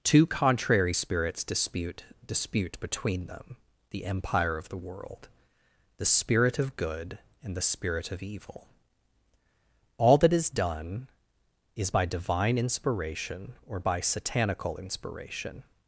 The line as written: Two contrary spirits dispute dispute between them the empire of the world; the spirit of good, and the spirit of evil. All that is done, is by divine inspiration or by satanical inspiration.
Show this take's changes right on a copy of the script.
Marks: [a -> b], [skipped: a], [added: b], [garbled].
Two contrary spirits dispute dispute between them the empire of the world; the spirit of good, and the spirit of evil. All that is done, is by divine inspiration or by satanical inspiration.